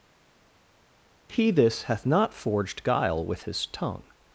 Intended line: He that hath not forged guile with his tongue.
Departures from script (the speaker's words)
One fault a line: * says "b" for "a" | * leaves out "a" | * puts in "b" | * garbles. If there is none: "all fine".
* says "this" for "that"